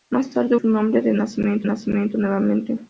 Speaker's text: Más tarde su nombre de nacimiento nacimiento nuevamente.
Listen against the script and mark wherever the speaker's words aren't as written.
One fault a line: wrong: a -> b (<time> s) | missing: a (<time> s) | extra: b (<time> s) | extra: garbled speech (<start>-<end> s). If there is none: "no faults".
no faults